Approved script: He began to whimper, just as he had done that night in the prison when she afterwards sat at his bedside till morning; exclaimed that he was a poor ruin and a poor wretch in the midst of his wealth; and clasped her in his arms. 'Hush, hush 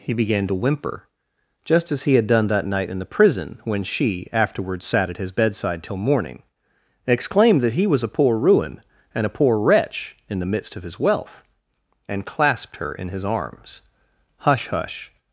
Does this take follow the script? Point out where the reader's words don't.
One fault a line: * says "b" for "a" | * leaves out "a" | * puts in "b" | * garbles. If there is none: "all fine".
all fine